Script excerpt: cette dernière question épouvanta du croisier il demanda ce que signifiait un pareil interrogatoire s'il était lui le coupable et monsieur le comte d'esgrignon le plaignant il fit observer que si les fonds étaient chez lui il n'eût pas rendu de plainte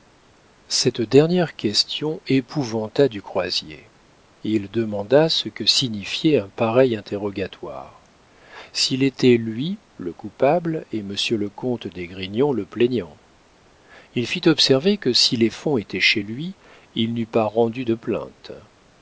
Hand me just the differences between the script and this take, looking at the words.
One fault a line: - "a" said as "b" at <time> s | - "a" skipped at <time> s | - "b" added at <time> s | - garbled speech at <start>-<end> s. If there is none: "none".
none